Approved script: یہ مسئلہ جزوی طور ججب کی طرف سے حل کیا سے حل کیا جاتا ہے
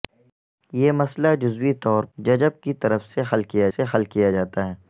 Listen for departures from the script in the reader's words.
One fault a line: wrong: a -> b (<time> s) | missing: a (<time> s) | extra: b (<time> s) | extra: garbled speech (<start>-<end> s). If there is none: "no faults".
no faults